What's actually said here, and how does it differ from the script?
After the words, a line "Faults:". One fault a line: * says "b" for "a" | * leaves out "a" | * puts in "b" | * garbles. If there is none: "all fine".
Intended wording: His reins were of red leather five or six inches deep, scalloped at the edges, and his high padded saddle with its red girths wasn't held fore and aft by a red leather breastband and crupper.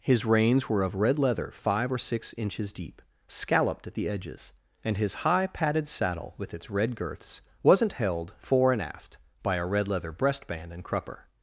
His reins were of red leather five or six inches deep, scalloped at the edges, and his high padded saddle with its red girths wasn't held fore and aft by a red leather breastband and crupper.
Faults:
all fine